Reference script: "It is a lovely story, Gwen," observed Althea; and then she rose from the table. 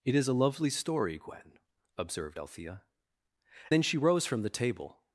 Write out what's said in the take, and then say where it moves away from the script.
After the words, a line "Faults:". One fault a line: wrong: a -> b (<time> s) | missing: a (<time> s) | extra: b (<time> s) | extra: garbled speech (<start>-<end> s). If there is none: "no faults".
"It is a lovely story, Gwen," observed Althea; then she rose from the table.
Faults:
missing: and (2.8 s)